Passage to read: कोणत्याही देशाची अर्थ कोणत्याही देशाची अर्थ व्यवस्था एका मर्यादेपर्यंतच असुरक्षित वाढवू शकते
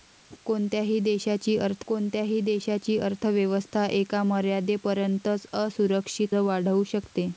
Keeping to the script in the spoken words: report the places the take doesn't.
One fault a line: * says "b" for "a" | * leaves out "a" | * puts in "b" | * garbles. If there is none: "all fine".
all fine